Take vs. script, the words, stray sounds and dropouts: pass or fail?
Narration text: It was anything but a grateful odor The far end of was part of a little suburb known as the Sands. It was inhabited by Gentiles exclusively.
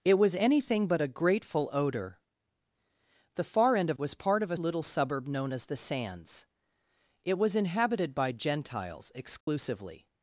fail